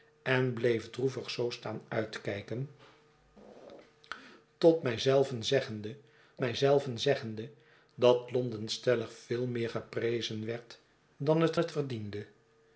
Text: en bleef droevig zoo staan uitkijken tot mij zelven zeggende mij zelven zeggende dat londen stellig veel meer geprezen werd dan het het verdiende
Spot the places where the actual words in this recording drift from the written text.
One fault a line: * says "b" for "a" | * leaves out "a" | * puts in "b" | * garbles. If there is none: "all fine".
all fine